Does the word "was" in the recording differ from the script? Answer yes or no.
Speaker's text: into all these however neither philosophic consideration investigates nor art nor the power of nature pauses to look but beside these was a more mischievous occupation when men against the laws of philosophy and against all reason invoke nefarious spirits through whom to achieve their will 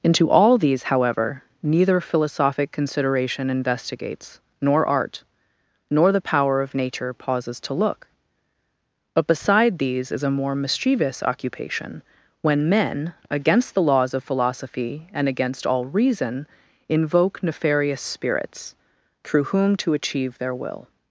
yes